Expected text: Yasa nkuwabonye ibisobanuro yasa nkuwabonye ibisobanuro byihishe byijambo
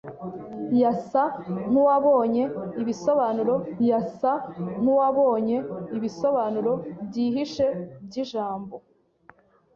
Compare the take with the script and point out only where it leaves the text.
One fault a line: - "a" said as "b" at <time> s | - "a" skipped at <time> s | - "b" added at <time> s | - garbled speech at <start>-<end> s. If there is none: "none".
none